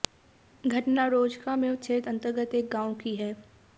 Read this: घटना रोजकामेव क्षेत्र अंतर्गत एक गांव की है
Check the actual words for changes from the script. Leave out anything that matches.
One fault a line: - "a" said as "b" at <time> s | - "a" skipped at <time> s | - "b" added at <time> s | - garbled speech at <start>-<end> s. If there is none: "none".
none